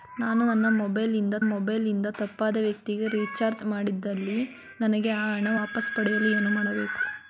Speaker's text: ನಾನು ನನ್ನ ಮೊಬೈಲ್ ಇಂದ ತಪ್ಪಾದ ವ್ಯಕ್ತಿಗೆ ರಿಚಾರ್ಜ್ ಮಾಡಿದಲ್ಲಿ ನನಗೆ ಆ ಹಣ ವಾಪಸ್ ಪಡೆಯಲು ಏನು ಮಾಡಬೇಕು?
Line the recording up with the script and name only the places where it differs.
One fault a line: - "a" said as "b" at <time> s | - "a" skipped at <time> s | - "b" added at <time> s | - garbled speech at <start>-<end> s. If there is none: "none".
- "ಮೊಬೈಲ್ ಇಂದ" added at 1.5 s